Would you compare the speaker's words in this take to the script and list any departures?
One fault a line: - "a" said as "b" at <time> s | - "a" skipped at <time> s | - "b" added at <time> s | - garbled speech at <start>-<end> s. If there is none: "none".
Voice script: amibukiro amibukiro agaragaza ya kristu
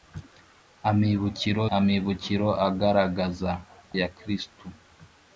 none